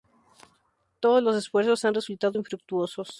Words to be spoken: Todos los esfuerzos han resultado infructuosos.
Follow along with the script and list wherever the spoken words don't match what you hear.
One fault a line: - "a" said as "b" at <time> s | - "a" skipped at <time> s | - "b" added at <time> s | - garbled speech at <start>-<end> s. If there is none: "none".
none